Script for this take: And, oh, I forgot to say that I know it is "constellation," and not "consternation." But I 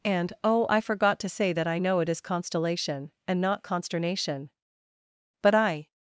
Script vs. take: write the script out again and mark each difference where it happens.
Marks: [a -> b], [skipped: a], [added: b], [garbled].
And, oh, I forgot to say that I know it is "constellation," and not "consternation." But I